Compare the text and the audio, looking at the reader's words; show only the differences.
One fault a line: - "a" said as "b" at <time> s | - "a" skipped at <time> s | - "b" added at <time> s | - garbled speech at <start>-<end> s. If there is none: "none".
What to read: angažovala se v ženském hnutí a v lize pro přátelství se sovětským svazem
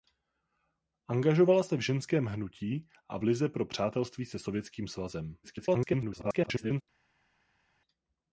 - garbled speech at 5.4-6.8 s